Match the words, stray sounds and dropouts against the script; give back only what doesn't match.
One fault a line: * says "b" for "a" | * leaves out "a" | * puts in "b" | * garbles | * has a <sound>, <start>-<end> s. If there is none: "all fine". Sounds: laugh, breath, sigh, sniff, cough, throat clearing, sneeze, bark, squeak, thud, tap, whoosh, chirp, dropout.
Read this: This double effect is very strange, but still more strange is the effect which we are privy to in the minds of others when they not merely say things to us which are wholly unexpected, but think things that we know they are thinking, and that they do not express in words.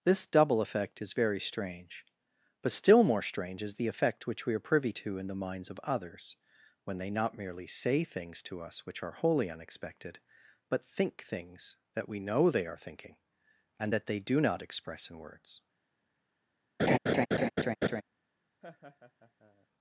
* has a laugh, 16.8-18.0 s
* has a laugh, 18.6-19.7 s